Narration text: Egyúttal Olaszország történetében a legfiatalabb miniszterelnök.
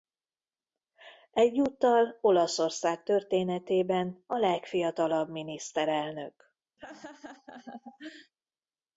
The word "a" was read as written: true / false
true